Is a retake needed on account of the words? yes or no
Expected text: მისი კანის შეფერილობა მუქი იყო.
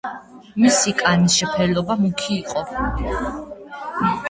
no